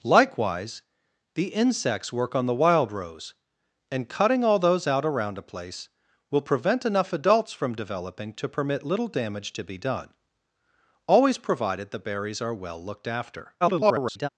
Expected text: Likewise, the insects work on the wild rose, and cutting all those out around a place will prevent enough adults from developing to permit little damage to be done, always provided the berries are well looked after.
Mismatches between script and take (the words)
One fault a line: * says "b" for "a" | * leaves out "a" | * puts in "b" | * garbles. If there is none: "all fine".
* garbles